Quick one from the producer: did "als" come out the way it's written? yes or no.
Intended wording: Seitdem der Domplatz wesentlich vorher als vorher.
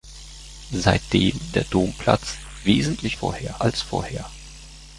yes